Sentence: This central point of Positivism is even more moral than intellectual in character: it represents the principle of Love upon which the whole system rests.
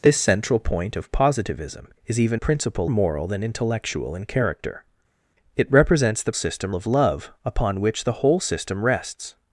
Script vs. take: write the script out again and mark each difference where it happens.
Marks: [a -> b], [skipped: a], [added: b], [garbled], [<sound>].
This central point of Positivism is even [more -> principle] moral than intellectual in character: it represents the [principle -> system] of Love upon which the whole system rests.